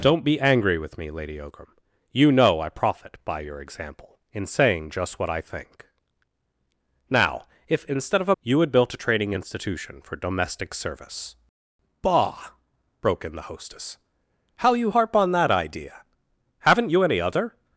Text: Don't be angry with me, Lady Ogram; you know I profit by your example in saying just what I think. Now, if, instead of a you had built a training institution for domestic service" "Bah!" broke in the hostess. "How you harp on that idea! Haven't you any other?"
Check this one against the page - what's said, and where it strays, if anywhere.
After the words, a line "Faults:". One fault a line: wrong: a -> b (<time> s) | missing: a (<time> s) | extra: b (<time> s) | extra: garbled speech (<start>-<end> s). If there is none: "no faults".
Don't be angry with me, Lady Ogram; you know I profit by your example in saying just what I think. Now, if, instead of a you had built a training institution for domestic service" "Bah!" broke in the hostess. "How you harp on that idea! Haven't you any other?"
Faults:
no faults